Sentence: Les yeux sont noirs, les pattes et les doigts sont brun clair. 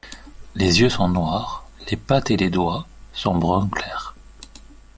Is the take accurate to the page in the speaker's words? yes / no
yes